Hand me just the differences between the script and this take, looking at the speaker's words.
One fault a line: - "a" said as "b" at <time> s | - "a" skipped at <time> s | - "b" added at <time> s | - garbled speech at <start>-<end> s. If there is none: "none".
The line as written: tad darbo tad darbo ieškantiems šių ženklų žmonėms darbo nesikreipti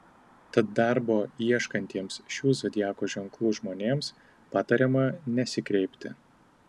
- "tad darbo" skipped at 1.2 s
- "zodiako" added at 2.6 s
- "darbo" said as "patariama" at 4.6 s